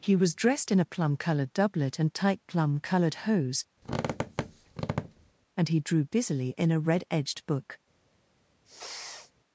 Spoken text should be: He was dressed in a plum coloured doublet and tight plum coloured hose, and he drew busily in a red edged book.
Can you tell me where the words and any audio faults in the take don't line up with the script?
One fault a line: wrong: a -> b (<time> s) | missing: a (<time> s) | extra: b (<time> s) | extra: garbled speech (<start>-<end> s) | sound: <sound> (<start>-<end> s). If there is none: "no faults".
sound: squeak (3.8-5.3 s)
sound: sniff (8.6-9.3 s)